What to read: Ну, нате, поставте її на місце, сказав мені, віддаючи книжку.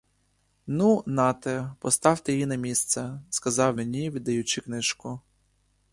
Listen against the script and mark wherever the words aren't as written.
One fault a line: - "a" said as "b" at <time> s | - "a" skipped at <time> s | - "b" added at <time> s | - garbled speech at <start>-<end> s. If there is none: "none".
none